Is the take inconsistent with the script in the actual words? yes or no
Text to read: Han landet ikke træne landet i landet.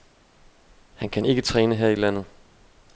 yes